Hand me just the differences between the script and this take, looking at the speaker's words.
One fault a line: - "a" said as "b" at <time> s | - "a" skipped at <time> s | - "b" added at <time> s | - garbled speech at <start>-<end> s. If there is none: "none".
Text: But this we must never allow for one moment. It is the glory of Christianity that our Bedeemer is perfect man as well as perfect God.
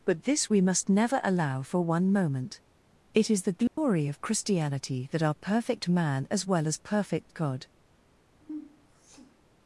- "Bedeemer is" skipped at 5.3 s